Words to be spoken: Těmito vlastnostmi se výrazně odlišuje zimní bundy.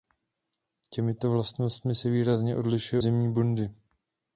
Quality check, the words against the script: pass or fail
pass